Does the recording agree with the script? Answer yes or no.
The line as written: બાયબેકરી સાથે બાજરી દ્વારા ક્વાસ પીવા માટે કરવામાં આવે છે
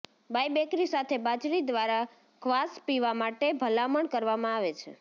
no